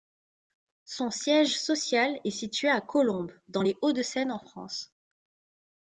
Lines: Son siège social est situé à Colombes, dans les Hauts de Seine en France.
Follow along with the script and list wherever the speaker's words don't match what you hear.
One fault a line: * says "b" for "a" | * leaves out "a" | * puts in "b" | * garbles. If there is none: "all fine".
all fine